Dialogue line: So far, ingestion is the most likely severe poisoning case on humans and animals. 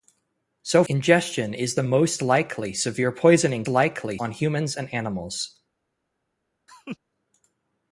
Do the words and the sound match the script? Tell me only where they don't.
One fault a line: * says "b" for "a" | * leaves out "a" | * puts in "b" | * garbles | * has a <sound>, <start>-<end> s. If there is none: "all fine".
* leaves out "far"
* says "likely" for "case"
* has a laugh, 6.7-7.0 s